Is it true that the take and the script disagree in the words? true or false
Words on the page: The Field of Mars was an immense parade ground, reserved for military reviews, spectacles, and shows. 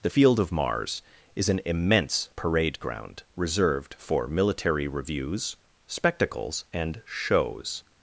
true